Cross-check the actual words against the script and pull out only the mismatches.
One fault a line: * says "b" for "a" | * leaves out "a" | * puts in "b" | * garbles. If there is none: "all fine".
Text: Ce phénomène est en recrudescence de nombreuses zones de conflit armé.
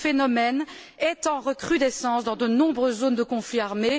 * puts in "dans"